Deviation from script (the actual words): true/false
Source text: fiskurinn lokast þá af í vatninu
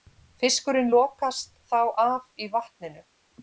false